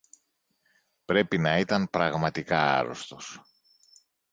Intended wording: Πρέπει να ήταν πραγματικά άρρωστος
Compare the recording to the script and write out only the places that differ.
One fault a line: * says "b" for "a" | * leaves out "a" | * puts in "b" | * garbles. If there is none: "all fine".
all fine